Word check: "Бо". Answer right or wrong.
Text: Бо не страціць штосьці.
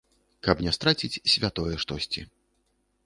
wrong